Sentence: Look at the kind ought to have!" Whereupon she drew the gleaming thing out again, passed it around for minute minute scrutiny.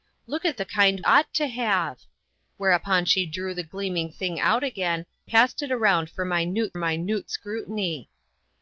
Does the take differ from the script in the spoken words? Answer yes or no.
no